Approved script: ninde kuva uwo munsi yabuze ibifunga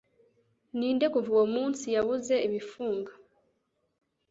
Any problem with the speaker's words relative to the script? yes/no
no